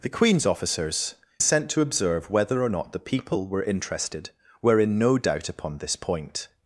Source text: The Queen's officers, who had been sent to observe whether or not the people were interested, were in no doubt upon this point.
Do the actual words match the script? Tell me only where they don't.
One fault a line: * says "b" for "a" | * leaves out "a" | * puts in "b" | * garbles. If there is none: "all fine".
* leaves out "who had been"